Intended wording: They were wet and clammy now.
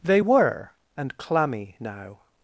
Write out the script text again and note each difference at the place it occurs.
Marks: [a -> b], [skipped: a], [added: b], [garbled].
They were [skipped: wet] and clammy now.